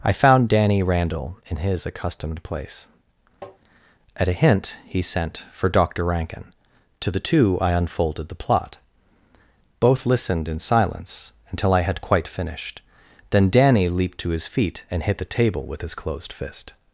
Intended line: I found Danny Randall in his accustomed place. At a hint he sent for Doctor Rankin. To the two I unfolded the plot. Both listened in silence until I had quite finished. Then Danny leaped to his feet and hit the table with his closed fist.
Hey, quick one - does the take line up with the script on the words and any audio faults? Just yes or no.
no